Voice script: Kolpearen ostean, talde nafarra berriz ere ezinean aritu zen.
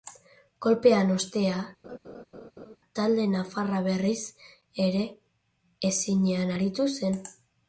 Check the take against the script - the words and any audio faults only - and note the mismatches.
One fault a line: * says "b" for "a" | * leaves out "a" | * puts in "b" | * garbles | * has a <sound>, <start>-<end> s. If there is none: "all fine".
* has a laugh, 1.8-2.8 s